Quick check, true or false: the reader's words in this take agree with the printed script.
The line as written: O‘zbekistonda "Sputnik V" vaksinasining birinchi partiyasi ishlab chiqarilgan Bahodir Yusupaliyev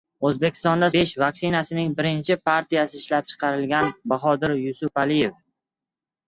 false